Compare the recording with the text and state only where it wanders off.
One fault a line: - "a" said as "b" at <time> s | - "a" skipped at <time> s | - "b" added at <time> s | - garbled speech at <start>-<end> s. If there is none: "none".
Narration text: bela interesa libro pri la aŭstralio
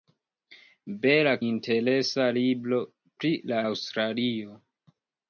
none